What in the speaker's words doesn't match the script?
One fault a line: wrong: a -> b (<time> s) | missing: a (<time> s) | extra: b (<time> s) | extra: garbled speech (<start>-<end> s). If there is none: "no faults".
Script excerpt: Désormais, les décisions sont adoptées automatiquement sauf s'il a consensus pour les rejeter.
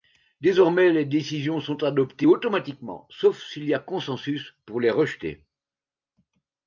extra: y (3.6 s)